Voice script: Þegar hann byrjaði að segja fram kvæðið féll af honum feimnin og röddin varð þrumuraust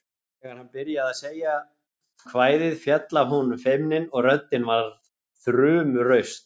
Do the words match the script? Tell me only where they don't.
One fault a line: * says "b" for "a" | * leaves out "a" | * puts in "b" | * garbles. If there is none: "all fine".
* leaves out "fram"